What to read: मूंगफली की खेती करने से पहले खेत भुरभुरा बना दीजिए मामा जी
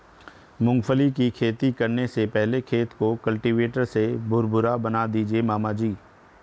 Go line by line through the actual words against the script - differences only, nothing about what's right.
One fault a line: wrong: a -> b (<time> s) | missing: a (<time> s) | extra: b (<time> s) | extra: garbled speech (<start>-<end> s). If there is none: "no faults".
extra: को कल्टीवेटर से (2.9 s)